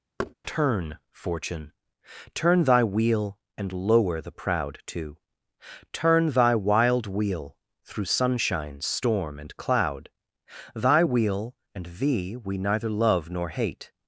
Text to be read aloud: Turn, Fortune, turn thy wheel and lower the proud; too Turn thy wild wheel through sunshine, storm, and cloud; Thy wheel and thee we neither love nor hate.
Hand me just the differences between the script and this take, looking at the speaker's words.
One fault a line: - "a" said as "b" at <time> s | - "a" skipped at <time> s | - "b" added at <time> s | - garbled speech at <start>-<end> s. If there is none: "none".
none